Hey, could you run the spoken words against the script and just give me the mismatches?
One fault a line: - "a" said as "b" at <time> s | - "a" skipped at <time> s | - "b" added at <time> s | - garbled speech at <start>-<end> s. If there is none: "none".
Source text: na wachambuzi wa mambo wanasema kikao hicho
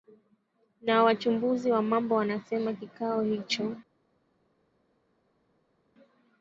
none